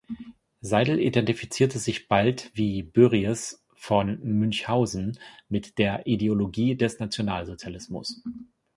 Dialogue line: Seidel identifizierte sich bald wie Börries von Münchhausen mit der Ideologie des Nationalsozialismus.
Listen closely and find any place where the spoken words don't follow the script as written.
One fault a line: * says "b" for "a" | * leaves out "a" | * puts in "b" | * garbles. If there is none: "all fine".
all fine